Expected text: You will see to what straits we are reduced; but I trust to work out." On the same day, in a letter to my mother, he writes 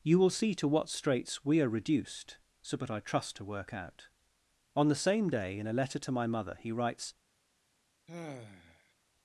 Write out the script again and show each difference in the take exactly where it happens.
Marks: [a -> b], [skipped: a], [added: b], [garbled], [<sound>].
You will see to what straits we are reduced; [added: so] but I trust to work out." On the same day, in a letter to my mother, he writes [sigh]